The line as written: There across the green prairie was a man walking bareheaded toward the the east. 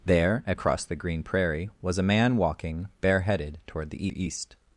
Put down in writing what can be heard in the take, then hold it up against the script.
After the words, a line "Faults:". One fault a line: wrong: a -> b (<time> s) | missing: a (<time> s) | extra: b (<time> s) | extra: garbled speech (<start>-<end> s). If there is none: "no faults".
There across the green prairie was a man walking bareheaded toward the the east.
Faults:
no faults